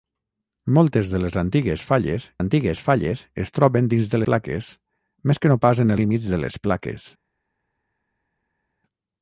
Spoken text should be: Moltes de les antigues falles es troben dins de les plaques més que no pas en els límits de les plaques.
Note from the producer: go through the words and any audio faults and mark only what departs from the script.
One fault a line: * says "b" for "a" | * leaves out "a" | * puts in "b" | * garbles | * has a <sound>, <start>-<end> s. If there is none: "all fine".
* puts in "antigues falles"
* leaves out "les"
* leaves out "els"